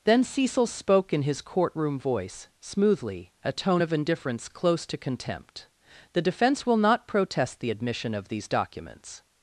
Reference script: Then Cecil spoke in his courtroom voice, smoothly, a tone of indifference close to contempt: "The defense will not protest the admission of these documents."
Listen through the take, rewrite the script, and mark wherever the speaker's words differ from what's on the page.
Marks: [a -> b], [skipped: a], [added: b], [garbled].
Then Cecil spoke in his courtroom voice, smoothly, a tone of indifference close to contempt: "The defense will not protest the admission of these documents."